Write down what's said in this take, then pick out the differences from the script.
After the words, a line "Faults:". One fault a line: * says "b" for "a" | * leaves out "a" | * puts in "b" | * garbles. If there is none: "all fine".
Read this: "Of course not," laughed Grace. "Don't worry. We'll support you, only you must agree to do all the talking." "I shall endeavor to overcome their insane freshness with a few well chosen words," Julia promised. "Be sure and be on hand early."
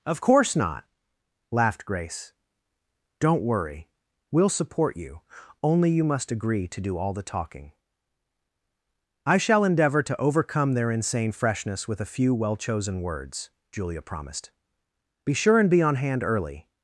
"Of course not," laughed Grace. "Don't worry. We'll support you, only you must agree to do all the talking." "I shall endeavor to overcome their insane freshness with a few well chosen words," Julia promised. "Be sure and be on hand early."
Faults:
all fine